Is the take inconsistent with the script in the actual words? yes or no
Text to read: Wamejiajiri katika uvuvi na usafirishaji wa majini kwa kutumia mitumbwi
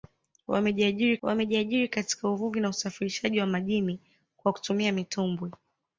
yes